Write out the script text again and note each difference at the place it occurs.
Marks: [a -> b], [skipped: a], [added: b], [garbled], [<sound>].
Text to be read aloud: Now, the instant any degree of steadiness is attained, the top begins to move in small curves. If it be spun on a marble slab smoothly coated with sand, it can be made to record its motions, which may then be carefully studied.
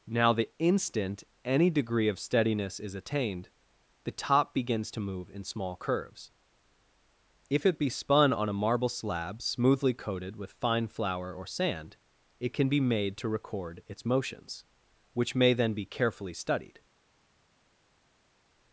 Now, the instant any degree of steadiness is attained, the top begins to move in small curves. If it be spun on a marble slab smoothly coated with [added: fine flour or] sand, it can be made to record its motions, which may then be carefully studied.